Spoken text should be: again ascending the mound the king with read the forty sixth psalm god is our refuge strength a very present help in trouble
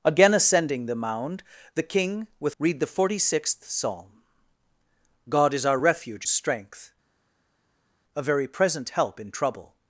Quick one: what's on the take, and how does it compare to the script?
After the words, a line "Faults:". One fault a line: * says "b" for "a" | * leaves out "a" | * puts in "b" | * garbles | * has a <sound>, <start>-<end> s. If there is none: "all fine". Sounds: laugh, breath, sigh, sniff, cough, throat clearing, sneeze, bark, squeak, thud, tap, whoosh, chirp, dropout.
again ascending the mound the king with read the forty sixth psalm god is our refuge strength a very present help in trouble
Faults:
all fine